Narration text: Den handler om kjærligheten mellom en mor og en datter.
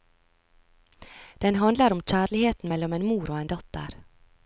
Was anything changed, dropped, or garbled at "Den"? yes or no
no